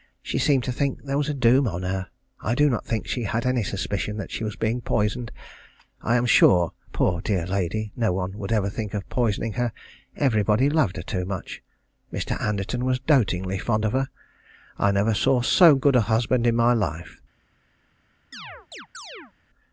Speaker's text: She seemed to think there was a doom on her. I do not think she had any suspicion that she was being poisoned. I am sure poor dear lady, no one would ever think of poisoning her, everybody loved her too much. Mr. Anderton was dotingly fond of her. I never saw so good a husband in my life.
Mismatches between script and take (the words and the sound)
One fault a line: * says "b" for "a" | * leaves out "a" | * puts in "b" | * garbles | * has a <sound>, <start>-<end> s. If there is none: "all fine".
* has a chirp, 18.3-19.3 s